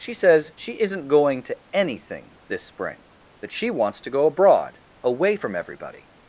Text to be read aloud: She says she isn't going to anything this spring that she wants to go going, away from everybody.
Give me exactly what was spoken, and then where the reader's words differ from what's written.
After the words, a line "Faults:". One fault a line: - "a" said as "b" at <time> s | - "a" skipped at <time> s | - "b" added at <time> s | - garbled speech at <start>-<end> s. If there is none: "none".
She says she isn't going to anything this spring that she wants to go abroad, away from everybody.
Faults:
- "going" said as "abroad" at 4.2 s